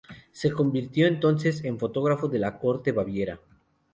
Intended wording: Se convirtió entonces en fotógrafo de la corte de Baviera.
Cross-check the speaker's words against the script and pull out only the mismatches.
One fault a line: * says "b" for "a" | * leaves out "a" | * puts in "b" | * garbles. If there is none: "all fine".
all fine